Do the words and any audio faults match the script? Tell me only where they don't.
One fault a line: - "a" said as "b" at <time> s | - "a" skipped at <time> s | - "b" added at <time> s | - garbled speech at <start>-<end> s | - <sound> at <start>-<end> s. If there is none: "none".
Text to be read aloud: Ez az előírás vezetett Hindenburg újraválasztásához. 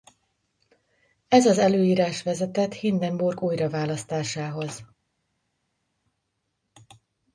none